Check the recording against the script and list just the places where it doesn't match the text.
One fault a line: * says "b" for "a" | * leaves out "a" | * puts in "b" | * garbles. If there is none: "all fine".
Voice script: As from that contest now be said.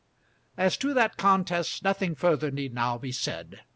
* says "to" for "from"
* puts in "nothing further need"